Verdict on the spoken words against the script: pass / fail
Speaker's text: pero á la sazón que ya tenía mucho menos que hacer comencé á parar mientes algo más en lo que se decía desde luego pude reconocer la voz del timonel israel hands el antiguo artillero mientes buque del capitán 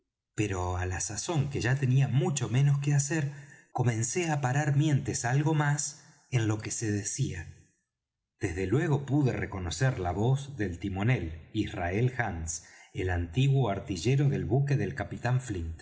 fail